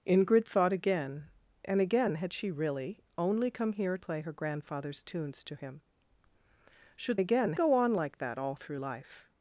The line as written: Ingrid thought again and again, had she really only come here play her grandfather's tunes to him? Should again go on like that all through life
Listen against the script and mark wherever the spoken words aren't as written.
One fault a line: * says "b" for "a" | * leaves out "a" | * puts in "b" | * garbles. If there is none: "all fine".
all fine